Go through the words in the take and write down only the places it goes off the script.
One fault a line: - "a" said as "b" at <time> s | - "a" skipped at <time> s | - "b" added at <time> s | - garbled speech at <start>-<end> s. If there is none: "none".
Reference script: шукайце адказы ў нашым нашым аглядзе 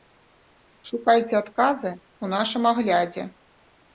- "нашым" skipped at 2.6 s